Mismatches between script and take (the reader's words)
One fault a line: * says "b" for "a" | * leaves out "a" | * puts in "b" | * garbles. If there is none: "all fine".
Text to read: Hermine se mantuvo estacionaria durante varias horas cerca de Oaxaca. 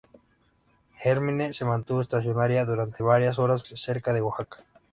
all fine